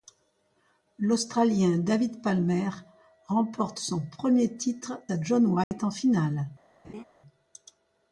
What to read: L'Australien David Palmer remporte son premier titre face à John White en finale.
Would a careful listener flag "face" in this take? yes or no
yes